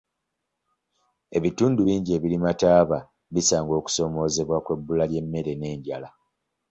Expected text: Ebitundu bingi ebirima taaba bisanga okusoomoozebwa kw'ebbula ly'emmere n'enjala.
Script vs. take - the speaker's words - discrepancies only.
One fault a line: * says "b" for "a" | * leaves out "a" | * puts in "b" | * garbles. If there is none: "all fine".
all fine